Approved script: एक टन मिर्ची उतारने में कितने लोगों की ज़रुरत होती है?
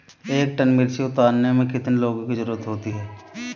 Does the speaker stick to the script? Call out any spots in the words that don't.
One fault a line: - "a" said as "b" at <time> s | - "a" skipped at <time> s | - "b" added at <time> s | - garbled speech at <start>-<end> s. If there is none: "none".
none